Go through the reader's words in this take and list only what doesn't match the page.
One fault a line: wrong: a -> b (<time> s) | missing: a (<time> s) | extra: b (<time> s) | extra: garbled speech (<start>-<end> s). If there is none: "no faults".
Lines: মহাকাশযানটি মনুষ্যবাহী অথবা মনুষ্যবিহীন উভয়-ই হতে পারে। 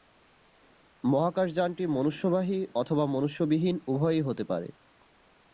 no faults